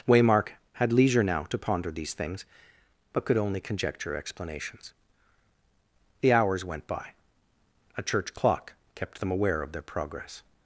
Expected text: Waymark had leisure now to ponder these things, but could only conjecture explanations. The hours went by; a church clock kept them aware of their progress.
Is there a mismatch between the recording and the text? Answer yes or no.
no